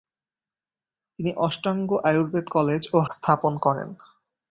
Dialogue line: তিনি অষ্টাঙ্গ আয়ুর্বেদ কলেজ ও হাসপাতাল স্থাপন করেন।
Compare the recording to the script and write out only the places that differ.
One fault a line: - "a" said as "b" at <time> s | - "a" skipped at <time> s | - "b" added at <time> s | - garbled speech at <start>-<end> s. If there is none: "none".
- "হাসপাতাল" skipped at 3.0 s